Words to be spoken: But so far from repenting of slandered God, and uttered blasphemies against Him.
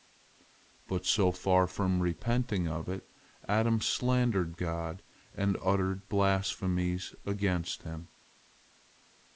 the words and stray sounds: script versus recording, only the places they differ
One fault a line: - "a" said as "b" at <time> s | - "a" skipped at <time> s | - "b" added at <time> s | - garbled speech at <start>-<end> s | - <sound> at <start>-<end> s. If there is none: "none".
- "it Adam" added at 2.9 s